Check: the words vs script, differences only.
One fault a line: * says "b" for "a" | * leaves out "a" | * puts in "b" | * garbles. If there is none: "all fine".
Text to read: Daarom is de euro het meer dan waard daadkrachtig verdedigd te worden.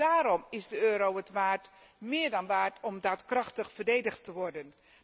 * puts in "om"